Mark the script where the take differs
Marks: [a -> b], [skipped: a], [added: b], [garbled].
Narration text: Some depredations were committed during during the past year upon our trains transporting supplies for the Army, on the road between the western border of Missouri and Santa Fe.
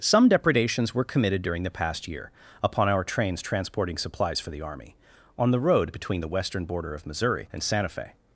Some depredations were committed during [skipped: during] the past year upon our trains transporting supplies for the Army, on the road between the western border of Missouri and Santa Fe.